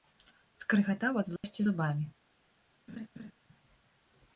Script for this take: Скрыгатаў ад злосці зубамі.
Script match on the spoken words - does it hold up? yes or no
yes